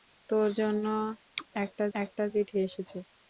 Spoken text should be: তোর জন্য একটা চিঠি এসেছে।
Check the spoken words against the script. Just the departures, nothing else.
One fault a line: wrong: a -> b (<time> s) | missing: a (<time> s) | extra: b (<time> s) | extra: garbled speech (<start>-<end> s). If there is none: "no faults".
extra: একটা (1.9 s)